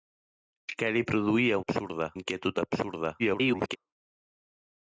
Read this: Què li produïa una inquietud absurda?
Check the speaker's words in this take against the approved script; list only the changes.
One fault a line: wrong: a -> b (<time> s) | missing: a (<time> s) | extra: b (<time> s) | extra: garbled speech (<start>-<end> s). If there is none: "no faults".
wrong: una -> absurda (1.6 s)
extra: garbled speech (3.2-3.8 s)